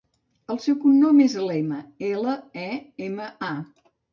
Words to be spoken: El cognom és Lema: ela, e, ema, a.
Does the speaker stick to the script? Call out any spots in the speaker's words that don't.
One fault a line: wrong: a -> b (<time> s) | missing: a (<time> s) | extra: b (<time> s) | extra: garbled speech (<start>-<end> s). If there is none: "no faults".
extra: seu (0.6 s)